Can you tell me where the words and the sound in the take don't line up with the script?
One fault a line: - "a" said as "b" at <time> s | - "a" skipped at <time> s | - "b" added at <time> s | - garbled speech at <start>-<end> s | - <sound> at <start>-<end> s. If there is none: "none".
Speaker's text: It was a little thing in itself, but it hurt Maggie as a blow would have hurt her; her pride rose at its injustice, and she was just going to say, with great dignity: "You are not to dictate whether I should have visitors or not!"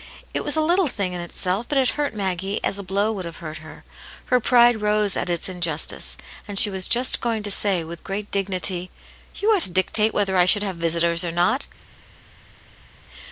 - "not" skipped at 9.6 s